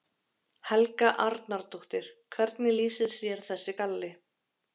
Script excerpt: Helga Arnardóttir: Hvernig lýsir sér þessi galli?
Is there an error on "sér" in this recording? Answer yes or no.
no